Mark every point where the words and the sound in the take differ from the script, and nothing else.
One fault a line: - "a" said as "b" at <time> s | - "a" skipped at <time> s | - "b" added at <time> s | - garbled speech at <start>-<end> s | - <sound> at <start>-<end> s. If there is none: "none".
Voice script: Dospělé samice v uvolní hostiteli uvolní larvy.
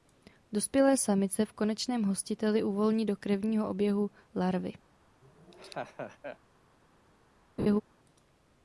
- "uvolní" said as "konečném" at 1.5 s
- "do krevního oběhu" added at 3.0 s
- laugh at 5.2-6.4 s
- laugh at 7.6-7.8 s